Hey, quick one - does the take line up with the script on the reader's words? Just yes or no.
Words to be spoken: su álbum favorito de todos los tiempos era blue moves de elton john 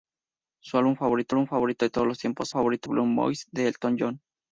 no